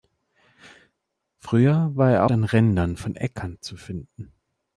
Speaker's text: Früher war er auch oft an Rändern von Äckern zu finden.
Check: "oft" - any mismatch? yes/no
yes